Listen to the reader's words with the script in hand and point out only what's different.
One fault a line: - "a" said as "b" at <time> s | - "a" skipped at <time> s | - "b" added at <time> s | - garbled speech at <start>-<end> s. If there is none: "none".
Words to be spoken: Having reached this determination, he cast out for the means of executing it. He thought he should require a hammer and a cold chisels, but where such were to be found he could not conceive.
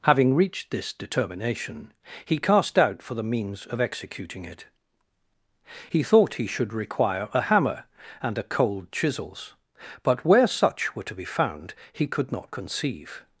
none